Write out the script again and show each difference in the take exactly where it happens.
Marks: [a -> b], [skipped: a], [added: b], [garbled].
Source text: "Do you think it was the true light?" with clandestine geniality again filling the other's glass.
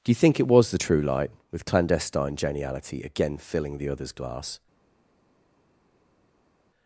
"Do you think it was the true light?" with clandestine geniality again filling the other's glass.